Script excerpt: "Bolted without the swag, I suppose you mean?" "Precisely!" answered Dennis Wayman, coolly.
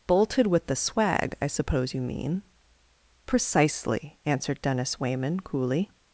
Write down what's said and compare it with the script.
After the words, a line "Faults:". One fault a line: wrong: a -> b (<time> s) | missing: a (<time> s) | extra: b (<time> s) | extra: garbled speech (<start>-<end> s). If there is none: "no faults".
"Bolted with the swag, I suppose you mean?" "Precisely!" answered Dennis Wayman, coolly.
Faults:
wrong: without -> with (0.5 s)